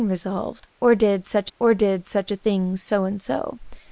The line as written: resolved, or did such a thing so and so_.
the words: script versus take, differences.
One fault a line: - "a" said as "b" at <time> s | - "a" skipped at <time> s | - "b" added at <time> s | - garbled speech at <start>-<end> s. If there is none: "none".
- "or did such" added at 1.6 s